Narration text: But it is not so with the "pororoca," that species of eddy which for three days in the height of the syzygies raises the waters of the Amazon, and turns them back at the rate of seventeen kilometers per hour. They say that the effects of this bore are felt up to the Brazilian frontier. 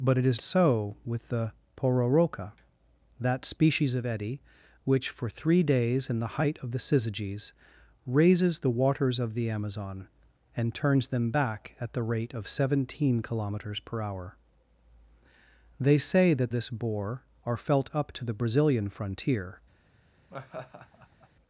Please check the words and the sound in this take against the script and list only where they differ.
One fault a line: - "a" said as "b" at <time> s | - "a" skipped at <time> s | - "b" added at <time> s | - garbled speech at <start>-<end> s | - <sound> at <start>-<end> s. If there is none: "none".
- "not" skipped at 0.4 s
- "the effects of" skipped at 16.5 s
- laugh at 20.3-21.3 s